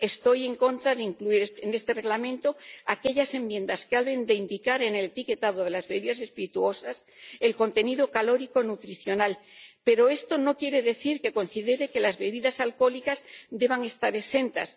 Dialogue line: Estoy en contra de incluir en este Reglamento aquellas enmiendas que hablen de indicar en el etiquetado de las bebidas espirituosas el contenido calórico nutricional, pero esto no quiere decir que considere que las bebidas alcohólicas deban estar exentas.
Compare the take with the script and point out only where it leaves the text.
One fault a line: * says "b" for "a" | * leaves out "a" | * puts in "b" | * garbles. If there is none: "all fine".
all fine